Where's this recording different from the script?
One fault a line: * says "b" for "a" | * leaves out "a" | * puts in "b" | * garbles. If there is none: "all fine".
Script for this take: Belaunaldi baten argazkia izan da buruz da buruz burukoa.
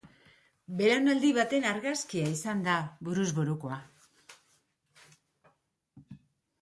* leaves out "da buruz"